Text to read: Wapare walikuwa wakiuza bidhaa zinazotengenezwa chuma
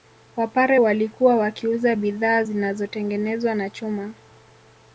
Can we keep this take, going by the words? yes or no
no